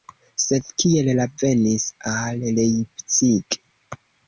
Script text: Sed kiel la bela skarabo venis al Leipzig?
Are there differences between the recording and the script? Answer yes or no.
yes